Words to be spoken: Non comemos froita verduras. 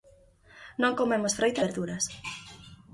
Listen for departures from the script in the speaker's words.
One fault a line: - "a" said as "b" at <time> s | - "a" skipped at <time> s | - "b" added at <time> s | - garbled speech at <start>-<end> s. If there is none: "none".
none